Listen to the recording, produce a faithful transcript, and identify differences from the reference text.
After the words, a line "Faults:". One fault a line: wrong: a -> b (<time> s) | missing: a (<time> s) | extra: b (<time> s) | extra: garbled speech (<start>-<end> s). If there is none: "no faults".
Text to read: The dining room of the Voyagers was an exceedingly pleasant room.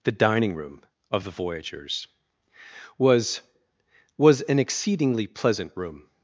The dining room of the Voyagers was was an exceedingly pleasant room.
Faults:
extra: was (4.2 s)